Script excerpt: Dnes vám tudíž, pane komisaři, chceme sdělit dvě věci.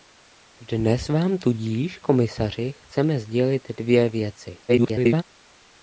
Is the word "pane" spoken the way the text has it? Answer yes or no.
no